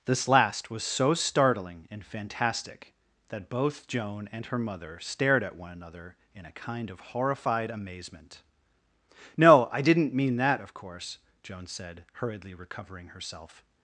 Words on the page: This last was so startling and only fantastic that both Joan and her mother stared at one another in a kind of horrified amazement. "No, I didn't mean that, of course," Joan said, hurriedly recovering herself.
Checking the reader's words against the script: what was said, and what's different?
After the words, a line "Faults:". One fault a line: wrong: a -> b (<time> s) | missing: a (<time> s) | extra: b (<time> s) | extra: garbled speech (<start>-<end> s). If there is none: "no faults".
This last was so startling and fantastic that both Joan and her mother stared at one another in a kind of horrified amazement. "No, I didn't mean that, of course," Joan said, hurriedly recovering herself.
Faults:
missing: only (2.0 s)